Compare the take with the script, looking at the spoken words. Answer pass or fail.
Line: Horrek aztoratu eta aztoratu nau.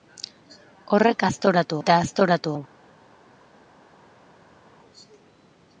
pass